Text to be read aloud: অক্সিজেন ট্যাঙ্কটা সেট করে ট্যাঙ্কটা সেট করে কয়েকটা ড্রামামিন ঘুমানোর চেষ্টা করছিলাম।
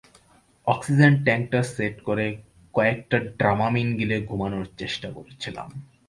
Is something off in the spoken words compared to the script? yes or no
yes